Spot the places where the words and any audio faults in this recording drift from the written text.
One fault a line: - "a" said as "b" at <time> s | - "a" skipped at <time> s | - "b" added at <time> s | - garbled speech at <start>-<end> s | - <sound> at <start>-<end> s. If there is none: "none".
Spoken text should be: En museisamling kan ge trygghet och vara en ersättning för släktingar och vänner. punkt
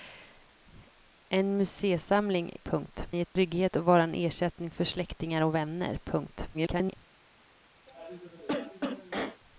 - "kan" said as "punkt" at 2.6 s
- dropout at 3.3-3.4 s
- garbled speech at 6.5-7.0 s
- cough at 7.9-9.4 s